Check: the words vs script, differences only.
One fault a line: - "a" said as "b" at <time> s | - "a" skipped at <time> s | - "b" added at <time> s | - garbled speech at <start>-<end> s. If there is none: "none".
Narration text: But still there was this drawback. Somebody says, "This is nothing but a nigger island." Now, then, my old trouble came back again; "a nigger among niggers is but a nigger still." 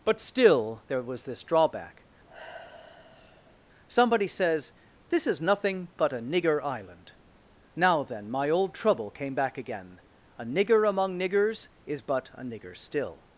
none